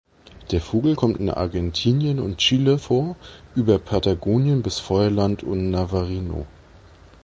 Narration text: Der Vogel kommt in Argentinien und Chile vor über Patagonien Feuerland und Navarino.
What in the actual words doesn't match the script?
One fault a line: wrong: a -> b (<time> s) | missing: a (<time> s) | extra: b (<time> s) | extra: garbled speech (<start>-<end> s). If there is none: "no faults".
extra: bis (4.6 s)